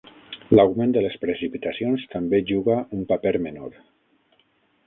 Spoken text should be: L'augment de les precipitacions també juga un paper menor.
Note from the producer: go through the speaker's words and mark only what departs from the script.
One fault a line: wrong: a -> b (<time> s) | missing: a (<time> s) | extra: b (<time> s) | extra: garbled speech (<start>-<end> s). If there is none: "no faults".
no faults